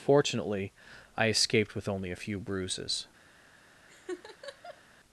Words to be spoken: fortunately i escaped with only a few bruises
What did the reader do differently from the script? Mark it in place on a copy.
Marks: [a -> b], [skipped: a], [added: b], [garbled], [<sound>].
fortunately i escaped with only a few bruises [laugh]